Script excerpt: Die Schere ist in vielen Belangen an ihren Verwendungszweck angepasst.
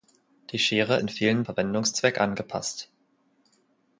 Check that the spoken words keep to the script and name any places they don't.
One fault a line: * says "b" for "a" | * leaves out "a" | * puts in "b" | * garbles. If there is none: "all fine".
* leaves out "ist"
* leaves out "Belangen an ihren"